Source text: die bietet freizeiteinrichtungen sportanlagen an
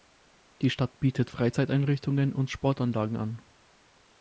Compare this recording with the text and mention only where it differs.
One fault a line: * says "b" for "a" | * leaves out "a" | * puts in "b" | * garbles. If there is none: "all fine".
* puts in "stadt"
* puts in "und"